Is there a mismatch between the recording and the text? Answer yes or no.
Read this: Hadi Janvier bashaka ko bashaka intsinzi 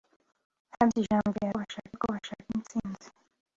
no